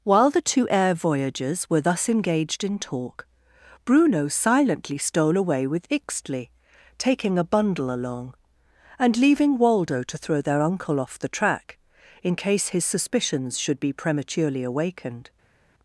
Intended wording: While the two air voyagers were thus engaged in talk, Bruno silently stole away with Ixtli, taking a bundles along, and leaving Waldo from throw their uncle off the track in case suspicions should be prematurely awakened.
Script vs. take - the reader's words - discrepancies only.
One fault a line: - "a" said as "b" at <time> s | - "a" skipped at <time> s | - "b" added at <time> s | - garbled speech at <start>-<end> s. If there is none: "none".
- "bundles" said as "bundle" at 7.4 s
- "from" said as "to" at 10.0 s
- "his" added at 12.7 s